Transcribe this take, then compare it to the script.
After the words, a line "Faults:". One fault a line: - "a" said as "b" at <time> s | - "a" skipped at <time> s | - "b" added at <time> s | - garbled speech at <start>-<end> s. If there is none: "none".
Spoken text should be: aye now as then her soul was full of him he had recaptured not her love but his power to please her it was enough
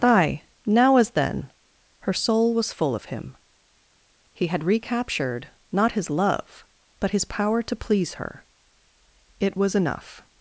aye now as then her soul was full of him he had recaptured not his love but his power to please her it was enough
Faults:
- "her" said as "his" at 5.9 s